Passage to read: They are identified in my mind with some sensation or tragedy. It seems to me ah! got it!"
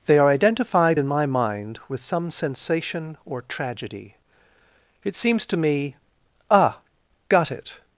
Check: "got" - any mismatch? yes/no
no